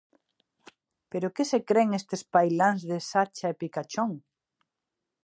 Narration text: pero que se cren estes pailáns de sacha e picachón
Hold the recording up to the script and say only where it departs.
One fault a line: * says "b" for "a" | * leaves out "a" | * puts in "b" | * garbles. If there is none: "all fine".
all fine